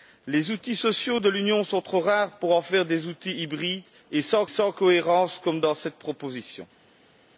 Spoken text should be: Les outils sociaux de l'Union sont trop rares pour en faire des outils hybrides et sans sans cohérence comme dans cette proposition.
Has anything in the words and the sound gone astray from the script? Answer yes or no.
no